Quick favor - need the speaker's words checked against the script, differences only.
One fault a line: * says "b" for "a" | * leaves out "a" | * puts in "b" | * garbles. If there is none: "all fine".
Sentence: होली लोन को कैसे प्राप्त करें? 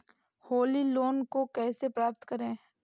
all fine